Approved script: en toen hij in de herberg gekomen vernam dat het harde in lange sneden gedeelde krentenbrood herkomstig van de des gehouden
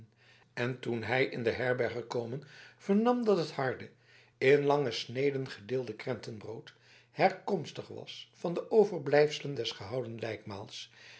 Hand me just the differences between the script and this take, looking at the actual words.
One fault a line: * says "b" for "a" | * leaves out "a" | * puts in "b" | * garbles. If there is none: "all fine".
* puts in "was"
* puts in "overblijfselen"